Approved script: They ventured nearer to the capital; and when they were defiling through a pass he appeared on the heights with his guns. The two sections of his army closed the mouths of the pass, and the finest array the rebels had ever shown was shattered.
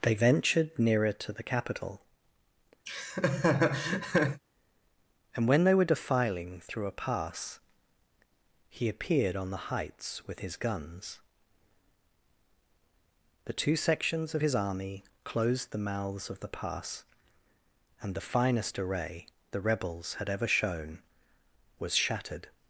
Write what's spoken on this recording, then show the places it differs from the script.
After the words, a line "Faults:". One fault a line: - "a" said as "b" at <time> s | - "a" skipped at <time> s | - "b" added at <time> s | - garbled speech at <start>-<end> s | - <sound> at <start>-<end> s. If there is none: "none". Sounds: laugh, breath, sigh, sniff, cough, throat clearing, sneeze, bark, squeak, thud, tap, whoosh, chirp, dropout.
They ventured nearer to the capital; and when they were defiling through a pass he appeared on the heights with his guns. The two sections of his army closed the mouths of the pass, and the finest array the rebels had ever shown was shattered.
Faults:
- laugh at 2.9-4.4 s